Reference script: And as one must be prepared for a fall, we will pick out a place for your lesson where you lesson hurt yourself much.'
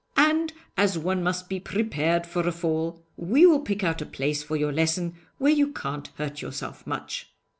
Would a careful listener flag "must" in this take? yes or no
no